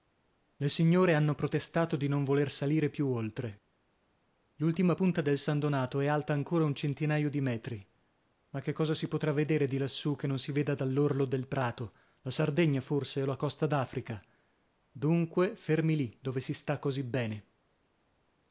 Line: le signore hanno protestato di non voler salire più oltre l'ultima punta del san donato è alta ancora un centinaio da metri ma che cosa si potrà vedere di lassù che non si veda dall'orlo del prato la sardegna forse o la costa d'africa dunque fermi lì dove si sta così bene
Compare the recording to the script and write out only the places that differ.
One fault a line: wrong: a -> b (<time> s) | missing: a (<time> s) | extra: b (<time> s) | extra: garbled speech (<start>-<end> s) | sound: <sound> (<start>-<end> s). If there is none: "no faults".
wrong: da -> di (7.3 s)